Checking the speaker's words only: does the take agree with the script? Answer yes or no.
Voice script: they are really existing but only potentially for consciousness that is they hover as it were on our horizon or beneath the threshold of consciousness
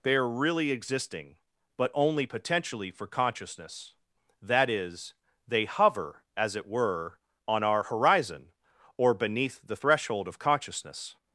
yes